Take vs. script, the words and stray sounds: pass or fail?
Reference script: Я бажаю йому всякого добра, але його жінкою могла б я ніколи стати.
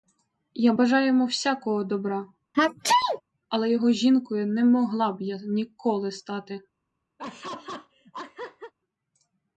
fail